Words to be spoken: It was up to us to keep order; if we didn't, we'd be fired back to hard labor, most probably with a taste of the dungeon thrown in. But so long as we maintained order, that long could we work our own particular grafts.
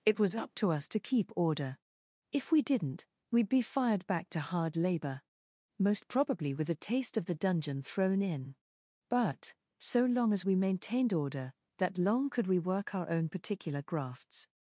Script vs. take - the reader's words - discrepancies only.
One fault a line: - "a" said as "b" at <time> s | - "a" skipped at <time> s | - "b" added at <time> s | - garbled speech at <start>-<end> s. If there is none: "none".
none